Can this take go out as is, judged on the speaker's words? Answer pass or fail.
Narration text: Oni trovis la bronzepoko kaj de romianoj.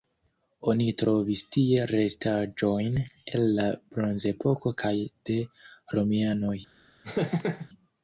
fail